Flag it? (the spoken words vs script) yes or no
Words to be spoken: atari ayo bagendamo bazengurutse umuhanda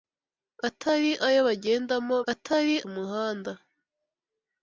yes